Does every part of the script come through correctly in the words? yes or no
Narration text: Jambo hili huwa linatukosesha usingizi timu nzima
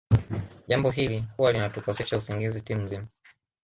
yes